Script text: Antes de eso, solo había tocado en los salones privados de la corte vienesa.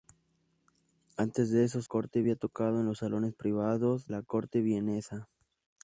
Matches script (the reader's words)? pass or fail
fail